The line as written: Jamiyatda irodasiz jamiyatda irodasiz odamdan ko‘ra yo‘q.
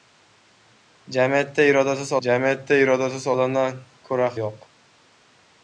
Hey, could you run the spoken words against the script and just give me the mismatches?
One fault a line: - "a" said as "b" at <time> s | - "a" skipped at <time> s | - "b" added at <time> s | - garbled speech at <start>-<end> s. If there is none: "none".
none